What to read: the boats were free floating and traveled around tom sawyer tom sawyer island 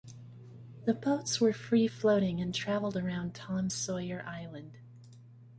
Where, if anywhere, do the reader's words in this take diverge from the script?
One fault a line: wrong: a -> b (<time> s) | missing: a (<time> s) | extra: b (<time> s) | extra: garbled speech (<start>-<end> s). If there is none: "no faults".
missing: tom sawyer (4.2 s)